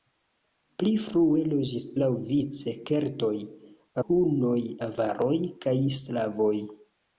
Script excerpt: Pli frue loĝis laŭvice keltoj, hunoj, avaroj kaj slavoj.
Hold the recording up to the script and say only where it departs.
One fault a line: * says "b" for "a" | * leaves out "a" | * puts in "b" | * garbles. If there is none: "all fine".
all fine